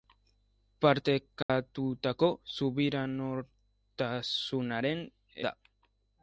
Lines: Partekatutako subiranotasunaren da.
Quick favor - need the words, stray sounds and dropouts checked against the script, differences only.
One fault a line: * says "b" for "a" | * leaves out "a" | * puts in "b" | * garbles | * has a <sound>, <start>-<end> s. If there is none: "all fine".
* has a dropout, 1.4-1.5 s